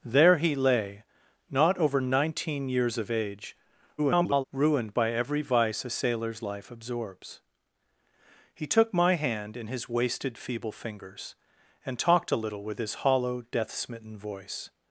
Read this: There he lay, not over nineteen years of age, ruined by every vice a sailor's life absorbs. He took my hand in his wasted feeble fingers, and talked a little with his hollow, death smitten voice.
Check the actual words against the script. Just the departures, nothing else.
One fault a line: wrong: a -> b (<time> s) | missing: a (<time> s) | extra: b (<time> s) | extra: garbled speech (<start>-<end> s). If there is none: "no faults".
extra: garbled speech (4.0-4.4 s)